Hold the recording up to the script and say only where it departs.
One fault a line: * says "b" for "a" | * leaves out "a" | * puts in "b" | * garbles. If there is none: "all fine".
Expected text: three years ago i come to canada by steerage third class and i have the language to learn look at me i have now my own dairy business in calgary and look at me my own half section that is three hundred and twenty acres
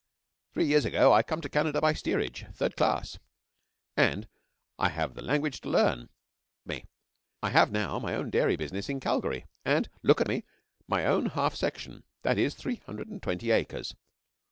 * leaves out "look at"